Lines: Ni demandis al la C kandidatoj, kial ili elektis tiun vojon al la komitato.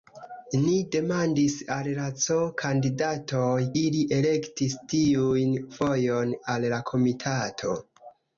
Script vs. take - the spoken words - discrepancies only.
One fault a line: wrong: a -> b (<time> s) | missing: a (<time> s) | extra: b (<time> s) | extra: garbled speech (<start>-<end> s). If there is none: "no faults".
missing: kial (3.6 s)